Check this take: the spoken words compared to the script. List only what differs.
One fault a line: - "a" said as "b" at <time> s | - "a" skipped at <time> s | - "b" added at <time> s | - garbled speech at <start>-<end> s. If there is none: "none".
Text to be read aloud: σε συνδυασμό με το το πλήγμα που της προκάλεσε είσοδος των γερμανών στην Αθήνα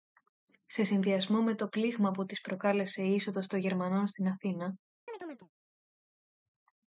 - "το" skipped at 1.7 s
- "η" added at 3.0 s